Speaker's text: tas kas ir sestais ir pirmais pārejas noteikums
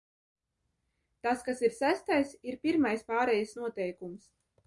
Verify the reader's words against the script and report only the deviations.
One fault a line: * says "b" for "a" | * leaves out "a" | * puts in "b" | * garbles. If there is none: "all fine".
all fine